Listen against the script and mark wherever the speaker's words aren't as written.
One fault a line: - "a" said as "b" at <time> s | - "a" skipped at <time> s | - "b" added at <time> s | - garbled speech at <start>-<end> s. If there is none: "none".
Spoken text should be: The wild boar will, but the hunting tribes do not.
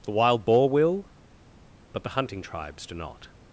none